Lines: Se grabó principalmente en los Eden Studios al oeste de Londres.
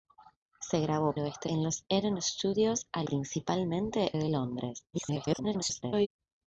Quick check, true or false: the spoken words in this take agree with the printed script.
false